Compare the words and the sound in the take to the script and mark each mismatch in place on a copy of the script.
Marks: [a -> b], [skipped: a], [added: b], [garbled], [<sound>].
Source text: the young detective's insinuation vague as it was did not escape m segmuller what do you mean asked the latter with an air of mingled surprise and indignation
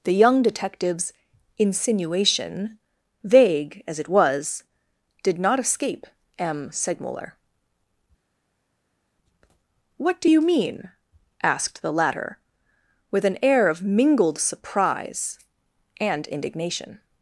the young detective's insinuation vague as it was did not escape m segmuller what do you mean asked the latter with an air of mingled surprise and indignation